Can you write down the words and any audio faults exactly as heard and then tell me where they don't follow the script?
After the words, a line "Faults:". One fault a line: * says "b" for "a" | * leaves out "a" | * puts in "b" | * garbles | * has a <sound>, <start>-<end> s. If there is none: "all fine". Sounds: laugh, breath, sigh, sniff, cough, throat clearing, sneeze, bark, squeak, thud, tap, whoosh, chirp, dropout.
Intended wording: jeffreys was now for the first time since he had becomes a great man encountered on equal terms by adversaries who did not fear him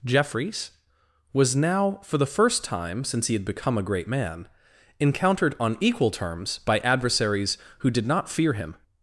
jeffreys was now for the first time since he had become a great man encountered on equal terms by adversaries who did not fear him
Faults:
* says "become" for "becomes"